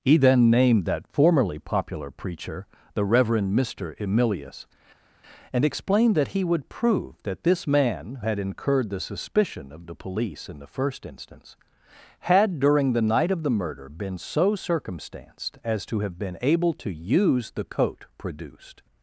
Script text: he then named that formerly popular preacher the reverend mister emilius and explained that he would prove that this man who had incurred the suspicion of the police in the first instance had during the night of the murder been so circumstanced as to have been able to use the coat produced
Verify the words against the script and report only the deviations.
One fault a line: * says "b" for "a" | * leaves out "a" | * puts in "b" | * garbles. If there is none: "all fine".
* leaves out "who"